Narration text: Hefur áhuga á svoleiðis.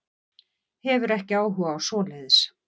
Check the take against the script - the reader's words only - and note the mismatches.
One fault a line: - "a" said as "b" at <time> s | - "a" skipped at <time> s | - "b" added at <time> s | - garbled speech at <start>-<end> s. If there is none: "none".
- "ekki" added at 1.2 s